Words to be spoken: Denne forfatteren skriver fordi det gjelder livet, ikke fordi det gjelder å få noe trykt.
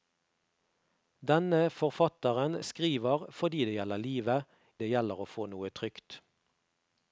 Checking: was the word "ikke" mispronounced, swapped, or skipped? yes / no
yes